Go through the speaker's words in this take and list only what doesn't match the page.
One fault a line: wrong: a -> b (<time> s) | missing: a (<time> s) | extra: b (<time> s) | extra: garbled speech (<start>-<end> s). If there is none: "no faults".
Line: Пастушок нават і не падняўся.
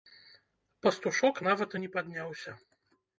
no faults